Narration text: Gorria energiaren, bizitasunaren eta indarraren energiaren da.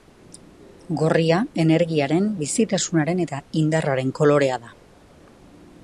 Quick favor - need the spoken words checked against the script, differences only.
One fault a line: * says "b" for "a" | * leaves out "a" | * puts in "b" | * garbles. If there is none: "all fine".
* says "kolorea" for "energiaren"